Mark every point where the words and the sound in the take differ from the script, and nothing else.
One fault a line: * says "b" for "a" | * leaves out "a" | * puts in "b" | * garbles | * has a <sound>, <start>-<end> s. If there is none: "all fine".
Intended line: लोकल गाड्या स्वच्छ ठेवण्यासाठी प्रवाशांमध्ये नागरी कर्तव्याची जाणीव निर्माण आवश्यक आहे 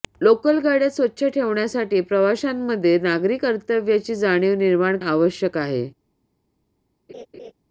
* has a laugh, 7.1-7.5 s